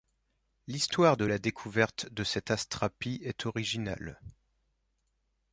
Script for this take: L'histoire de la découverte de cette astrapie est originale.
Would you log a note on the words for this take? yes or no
no